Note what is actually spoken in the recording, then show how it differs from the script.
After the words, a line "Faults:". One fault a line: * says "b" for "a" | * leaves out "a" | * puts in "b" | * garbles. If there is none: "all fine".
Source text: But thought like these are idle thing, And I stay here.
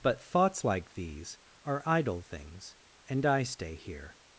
But thoughts like these are idle things, And I stay here.
Faults:
* says "thoughts" for "thought"
* says "things" for "thing"